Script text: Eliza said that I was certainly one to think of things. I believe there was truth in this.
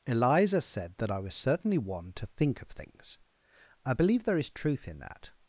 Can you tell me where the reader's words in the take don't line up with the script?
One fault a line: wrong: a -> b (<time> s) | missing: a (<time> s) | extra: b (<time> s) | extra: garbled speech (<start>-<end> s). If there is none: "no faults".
wrong: was -> is (4.4 s)
wrong: this -> that (5.0 s)